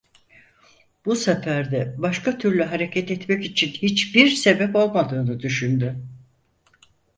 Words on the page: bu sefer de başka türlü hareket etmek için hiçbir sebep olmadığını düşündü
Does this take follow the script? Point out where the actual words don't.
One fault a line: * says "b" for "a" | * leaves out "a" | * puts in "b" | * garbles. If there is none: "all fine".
all fine